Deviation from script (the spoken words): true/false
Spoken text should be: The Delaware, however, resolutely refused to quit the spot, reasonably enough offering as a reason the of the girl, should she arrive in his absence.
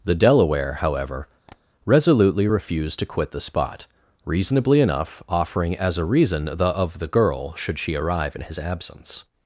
false